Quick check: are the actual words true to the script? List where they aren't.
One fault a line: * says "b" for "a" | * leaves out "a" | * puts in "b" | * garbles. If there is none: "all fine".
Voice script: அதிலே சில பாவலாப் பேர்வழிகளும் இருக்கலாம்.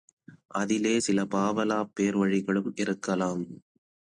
all fine